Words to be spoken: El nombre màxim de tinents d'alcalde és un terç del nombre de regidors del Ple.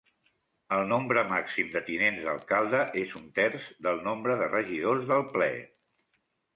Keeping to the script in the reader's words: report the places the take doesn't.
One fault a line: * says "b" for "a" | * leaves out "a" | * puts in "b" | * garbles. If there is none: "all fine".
all fine